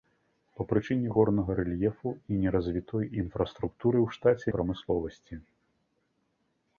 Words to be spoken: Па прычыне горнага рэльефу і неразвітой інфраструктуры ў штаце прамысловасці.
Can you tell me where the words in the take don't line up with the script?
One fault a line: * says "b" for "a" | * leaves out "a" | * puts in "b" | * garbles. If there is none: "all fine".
all fine